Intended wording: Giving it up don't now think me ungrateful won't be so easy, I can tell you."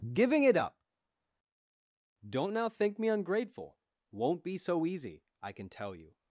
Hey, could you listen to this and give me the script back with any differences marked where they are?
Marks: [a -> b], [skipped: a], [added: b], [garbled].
Giving it up don't now think me ungrateful won't be so easy, I can tell you."